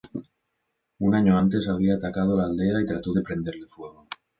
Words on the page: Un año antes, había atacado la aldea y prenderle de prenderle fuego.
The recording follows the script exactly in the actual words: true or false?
false